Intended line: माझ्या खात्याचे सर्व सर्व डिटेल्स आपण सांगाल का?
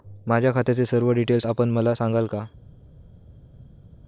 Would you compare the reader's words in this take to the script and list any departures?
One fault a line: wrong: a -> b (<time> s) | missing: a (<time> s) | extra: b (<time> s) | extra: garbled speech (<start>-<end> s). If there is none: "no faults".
missing: सर्व (1.1 s)
extra: मला (1.7 s)